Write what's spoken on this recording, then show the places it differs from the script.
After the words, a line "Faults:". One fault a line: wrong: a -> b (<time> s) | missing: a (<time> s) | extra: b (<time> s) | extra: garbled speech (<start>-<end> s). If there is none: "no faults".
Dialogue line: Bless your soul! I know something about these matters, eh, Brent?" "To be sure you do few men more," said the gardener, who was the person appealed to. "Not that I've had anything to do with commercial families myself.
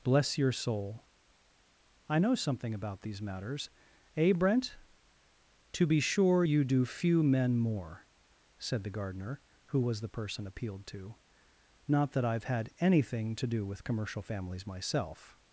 Bless your soul! I know something about these matters, eh, Brent?" "To be sure you do few men more," said the gardener, who was the person appealed to. "Not that I've had anything to do with commercial families myself.
Faults:
no faults